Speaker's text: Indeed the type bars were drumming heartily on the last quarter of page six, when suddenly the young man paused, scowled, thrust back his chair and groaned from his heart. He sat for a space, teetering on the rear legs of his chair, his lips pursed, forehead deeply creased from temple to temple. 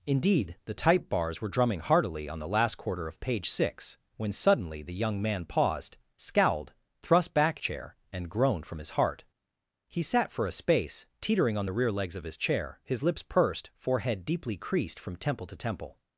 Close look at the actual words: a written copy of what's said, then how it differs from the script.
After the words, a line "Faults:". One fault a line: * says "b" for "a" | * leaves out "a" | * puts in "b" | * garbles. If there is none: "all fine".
Indeed the type bars were drumming heartily on the last quarter of page six, when suddenly the young man paused, scowled, thrust back chair and groaned from his heart. He sat for a space, teetering on the rear legs of his chair, his lips pursed, forehead deeply creased from temple to temple.
Faults:
* leaves out "his"